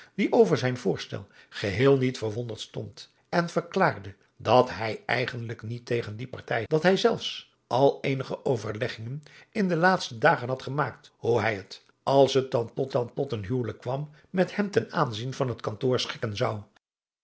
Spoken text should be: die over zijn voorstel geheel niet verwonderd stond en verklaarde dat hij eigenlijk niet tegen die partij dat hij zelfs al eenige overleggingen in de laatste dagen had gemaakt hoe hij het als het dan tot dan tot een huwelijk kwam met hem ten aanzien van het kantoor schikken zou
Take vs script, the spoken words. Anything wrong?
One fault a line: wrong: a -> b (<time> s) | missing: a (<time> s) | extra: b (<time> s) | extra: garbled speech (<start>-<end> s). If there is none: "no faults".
no faults